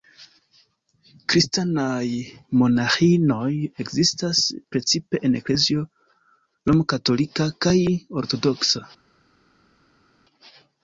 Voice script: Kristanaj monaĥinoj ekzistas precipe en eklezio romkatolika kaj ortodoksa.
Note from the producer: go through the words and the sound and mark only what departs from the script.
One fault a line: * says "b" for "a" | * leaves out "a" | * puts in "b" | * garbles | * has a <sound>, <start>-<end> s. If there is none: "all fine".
all fine